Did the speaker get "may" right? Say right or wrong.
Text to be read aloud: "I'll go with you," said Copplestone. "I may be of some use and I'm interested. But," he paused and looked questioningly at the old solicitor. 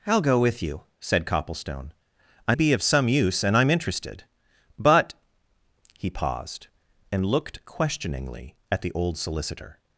wrong